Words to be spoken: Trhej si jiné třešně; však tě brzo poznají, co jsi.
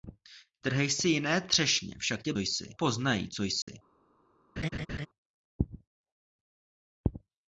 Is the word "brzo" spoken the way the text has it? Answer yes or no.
no